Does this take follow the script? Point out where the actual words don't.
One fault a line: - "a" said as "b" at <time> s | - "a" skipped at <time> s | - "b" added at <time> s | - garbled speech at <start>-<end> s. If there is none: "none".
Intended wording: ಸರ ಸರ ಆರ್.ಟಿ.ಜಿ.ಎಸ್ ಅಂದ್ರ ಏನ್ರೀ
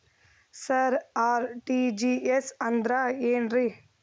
- "ಸರ" skipped at 0.9 s